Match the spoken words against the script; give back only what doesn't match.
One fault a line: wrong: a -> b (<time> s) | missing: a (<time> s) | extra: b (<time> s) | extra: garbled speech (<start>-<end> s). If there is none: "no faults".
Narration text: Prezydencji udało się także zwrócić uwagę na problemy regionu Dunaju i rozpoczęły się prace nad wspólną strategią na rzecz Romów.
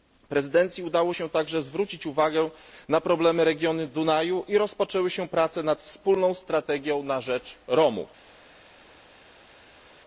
no faults